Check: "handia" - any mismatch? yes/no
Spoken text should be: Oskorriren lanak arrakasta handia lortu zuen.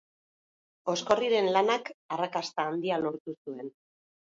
no